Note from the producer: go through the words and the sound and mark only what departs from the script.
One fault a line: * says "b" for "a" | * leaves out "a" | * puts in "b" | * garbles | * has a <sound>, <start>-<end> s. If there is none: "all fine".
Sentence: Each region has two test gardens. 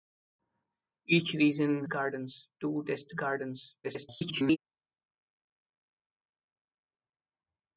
* says "gardens" for "has"
* garbles